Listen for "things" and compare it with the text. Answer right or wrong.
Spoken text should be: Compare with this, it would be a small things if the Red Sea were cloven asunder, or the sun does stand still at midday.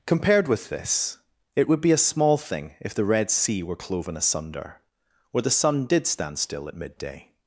wrong